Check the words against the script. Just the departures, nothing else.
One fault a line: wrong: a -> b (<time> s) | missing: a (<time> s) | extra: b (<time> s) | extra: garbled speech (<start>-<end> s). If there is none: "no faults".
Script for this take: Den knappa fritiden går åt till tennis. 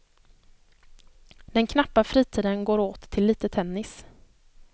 extra: lite (3.2 s)